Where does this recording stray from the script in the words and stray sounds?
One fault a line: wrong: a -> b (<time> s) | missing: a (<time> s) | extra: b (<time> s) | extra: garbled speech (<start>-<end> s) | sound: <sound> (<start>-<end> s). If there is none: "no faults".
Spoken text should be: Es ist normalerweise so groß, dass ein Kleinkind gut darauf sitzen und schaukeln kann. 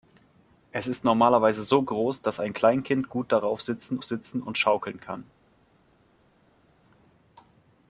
extra: sitzen (4.0 s)